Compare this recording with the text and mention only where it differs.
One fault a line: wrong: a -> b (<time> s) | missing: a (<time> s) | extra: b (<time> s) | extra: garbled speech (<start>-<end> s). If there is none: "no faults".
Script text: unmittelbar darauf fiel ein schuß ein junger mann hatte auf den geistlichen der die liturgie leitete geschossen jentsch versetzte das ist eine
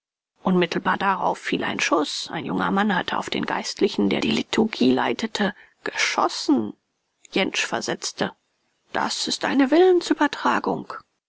no faults